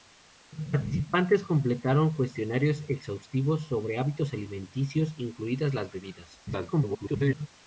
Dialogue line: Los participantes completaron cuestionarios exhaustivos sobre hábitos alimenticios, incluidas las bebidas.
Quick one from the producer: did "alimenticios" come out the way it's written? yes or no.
yes